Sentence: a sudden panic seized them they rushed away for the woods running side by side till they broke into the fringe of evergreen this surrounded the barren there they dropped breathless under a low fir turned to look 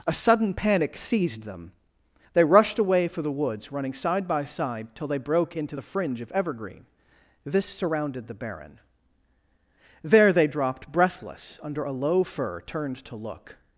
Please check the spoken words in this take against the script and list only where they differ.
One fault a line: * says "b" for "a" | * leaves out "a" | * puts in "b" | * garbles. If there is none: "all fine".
all fine